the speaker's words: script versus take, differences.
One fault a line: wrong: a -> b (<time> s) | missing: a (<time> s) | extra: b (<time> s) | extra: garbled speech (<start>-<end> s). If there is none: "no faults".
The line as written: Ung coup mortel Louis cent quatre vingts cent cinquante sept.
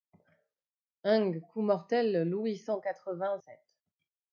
missing: cent cinquante (3.4 s)